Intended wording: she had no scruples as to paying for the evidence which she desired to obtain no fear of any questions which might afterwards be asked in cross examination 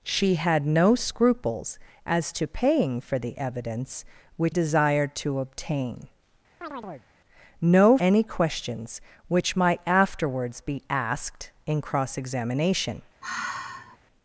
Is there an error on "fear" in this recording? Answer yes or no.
yes